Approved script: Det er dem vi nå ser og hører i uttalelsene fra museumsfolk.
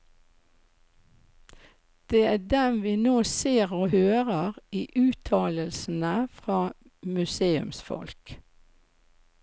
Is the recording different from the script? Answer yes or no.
no